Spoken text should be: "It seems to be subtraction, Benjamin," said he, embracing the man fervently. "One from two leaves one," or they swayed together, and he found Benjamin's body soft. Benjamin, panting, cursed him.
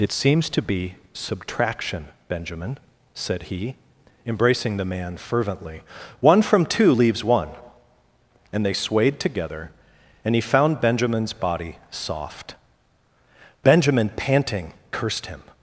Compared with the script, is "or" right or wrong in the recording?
wrong